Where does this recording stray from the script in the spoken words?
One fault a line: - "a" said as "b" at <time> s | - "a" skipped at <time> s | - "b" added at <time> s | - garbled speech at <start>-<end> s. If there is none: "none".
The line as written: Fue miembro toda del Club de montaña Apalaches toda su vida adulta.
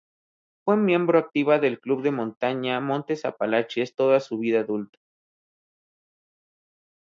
- "toda" said as "activa" at 1.2 s
- "Montes" added at 2.8 s